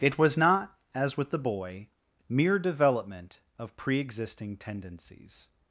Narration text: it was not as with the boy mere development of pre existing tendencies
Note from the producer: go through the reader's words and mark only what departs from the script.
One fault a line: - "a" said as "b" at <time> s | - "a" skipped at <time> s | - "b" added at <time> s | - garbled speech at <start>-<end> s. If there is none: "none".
none